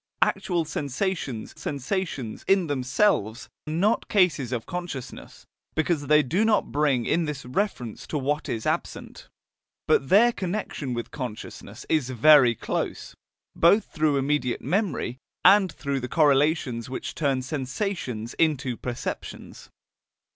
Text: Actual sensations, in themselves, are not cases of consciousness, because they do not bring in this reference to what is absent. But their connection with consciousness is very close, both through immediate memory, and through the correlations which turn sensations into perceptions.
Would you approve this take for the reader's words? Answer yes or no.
no